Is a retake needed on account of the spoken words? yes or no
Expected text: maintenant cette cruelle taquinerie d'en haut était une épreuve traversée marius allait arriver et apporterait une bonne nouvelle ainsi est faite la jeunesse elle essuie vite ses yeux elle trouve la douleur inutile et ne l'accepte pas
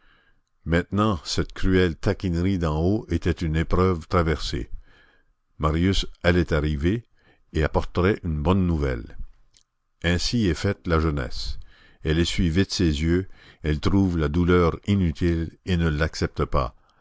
no